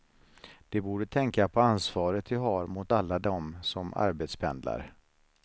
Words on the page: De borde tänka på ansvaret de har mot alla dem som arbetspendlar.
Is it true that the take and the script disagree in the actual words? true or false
false